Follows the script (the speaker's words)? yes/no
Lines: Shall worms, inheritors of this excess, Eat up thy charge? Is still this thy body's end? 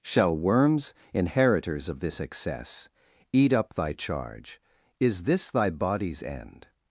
no